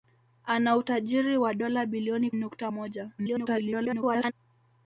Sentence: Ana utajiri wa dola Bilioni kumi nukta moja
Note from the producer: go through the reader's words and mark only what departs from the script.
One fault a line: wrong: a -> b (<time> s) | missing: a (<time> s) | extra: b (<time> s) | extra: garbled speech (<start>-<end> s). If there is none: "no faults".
missing: kumi (2.3 s)
extra: garbled speech (3.2-4.3 s)